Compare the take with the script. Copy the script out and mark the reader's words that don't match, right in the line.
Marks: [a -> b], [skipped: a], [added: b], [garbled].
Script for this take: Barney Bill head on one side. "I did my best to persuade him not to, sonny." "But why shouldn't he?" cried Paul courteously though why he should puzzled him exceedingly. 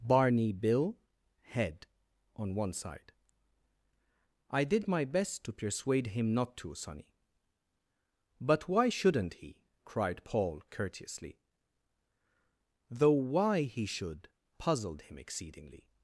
Barney Bill head on one side. "I did my best to persuade him not to, sonny." "But why shouldn't he?" cried Paul courteously though why he should puzzled him exceedingly.